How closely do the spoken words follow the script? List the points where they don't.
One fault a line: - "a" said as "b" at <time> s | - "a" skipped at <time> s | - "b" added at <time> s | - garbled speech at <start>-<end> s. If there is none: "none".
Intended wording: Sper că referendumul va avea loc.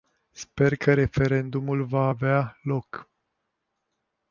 none